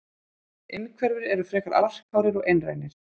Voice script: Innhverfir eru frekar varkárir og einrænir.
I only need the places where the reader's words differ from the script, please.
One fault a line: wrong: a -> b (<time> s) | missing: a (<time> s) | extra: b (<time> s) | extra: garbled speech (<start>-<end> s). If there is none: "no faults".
no faults